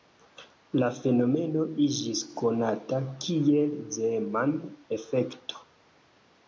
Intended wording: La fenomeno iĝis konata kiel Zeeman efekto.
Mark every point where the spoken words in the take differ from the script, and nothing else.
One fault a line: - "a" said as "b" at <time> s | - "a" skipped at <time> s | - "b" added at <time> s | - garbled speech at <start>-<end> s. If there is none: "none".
none